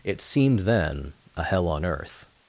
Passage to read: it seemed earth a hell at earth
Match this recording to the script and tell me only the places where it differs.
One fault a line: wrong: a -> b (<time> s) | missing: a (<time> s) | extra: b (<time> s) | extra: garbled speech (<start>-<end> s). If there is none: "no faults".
wrong: earth -> then (0.6 s)
wrong: at -> on (1.7 s)